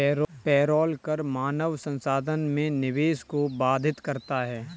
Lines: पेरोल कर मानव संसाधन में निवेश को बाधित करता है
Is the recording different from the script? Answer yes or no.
no